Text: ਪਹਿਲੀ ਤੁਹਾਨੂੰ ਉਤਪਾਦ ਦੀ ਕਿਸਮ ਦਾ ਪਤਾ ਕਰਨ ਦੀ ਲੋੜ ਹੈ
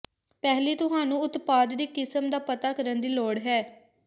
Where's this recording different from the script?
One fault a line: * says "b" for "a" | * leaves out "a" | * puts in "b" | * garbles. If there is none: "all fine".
all fine